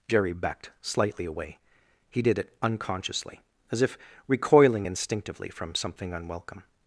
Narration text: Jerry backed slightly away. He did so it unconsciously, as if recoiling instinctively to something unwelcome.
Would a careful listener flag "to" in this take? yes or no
yes